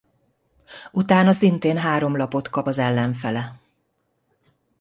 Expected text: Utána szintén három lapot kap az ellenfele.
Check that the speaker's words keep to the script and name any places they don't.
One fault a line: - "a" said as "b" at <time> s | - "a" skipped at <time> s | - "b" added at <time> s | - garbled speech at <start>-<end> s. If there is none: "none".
none